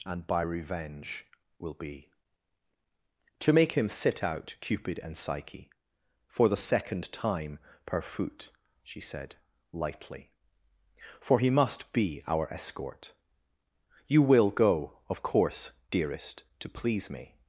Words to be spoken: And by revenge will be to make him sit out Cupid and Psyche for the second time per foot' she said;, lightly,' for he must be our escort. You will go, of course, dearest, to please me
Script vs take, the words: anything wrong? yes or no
no